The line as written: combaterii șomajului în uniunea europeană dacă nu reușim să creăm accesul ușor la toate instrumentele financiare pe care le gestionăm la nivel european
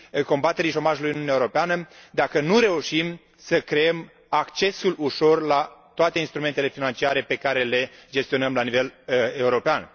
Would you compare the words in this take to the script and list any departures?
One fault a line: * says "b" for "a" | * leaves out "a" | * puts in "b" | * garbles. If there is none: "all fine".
all fine